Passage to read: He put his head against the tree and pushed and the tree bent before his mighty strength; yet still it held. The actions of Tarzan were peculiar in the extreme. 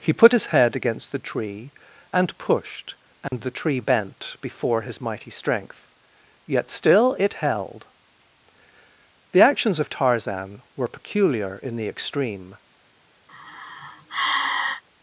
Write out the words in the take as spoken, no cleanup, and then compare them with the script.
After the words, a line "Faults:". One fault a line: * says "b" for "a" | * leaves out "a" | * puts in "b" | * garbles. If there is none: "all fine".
He put his head against the tree and pushed and the tree bent before his mighty strength; yet still it held. The actions of Tarzan were peculiar in the extreme.
Faults:
all fine